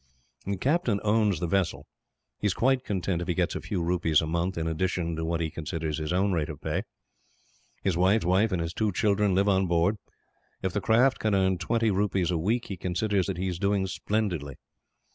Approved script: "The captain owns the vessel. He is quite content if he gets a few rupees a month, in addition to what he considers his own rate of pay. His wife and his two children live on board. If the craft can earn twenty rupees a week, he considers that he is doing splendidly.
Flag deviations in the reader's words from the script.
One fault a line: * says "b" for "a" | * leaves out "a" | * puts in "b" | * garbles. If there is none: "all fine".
* puts in "wife"